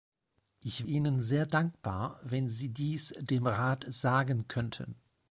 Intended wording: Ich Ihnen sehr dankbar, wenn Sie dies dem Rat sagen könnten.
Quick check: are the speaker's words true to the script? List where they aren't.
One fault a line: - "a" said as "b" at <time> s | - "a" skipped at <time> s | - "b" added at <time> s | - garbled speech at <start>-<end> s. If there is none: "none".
none